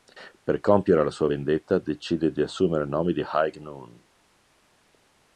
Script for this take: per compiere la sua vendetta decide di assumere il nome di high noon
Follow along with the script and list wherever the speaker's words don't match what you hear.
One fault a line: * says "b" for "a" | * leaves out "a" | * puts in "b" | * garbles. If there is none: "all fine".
all fine